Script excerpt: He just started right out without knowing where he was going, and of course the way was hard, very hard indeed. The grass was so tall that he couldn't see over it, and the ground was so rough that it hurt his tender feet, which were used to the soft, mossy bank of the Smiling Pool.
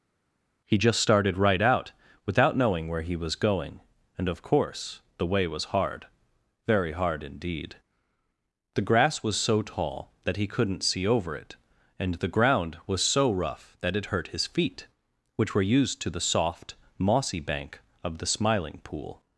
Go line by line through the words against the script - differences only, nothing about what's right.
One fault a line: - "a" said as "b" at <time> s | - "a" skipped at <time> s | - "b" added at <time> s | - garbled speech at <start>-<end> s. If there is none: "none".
- "tender" skipped at 14.5 s